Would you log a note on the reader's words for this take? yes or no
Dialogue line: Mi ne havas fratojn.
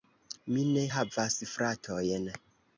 no